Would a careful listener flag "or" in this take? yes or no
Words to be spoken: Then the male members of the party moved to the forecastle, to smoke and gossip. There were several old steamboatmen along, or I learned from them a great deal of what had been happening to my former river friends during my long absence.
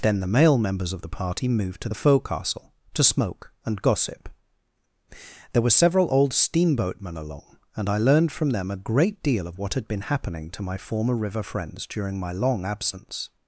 yes